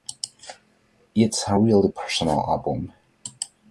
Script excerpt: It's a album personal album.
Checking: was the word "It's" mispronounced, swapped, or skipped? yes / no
no